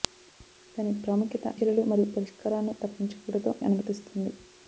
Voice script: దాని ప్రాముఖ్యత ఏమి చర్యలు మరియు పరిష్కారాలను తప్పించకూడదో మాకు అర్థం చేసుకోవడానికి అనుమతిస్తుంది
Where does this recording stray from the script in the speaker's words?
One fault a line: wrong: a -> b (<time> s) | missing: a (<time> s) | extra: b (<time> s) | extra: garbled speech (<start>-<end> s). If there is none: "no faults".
missing: ఏమి (1.5 s)
missing: మాకు అర్థం చేసుకోవడానికి (3.5 s)